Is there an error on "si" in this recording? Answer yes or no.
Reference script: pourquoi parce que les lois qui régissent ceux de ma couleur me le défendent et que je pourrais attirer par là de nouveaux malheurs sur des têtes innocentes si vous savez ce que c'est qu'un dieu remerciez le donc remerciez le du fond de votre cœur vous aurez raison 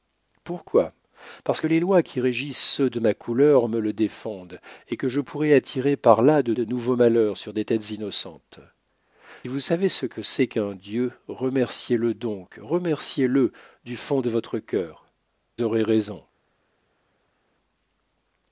yes